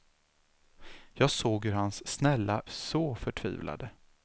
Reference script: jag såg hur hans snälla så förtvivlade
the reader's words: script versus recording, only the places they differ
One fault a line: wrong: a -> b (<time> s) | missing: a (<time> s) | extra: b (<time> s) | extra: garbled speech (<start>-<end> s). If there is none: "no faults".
no faults